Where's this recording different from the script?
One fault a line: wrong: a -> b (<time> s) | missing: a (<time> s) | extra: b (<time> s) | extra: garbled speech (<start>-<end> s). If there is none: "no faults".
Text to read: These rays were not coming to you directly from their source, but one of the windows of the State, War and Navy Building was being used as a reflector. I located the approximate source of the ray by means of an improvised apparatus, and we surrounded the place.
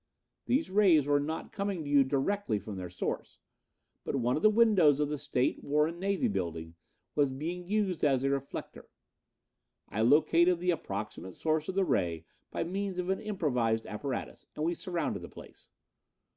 no faults